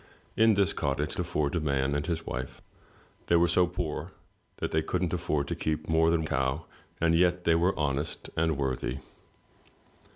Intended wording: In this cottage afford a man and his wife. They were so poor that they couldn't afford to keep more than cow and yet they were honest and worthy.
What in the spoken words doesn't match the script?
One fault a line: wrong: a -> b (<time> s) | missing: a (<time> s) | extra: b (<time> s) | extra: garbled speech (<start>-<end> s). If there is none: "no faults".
no faults